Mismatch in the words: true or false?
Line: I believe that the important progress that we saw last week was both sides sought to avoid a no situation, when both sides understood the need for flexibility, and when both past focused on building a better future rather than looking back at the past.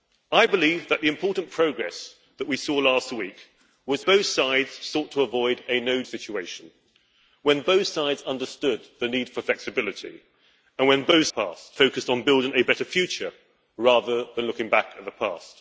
false